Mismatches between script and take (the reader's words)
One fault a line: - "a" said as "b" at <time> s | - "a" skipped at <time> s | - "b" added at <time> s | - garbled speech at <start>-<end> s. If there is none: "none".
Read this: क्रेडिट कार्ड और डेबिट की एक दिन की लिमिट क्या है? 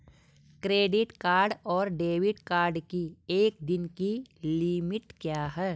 - "कार्ड" added at 2.4 s